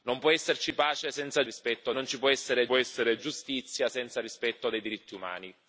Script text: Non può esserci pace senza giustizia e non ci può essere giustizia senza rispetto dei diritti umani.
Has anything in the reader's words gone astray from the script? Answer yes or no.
yes